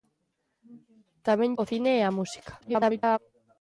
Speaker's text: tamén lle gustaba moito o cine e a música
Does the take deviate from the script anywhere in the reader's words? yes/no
yes